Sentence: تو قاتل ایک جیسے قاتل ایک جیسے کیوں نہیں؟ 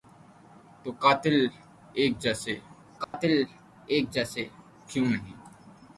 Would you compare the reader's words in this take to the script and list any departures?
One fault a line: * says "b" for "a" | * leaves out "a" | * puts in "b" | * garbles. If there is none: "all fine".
all fine